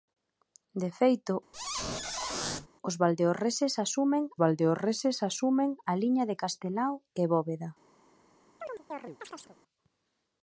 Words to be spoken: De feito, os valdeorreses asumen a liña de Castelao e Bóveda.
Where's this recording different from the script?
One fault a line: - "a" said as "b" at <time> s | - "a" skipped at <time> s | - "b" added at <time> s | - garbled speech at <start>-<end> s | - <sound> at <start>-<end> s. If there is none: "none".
- squeak at 1.5-2.7 s
- "valdeorreses asumen" added at 4.4 s
- chirp at 8.6-9.6 s